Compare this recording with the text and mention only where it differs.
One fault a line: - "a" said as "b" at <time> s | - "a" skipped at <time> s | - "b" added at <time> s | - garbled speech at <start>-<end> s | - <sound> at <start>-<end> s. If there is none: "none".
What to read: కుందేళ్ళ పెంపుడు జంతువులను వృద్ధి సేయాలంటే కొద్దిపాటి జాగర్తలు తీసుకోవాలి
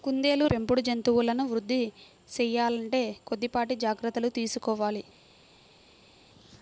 none